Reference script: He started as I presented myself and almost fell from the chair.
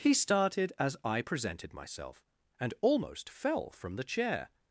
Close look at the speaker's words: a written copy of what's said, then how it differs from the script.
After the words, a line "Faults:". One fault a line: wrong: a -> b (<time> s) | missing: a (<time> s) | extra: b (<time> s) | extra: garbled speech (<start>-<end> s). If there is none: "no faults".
He started as I presented myself and almost fell from the chair.
Faults:
no faults